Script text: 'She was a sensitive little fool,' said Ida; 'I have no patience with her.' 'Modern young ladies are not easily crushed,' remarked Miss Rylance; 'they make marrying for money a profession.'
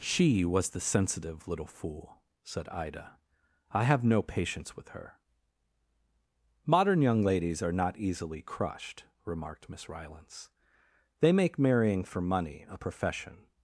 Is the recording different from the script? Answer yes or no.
yes